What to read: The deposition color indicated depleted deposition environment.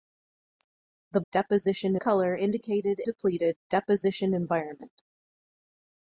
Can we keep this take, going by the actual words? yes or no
yes